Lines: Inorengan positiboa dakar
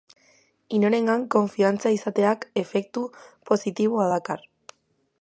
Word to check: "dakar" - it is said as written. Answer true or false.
true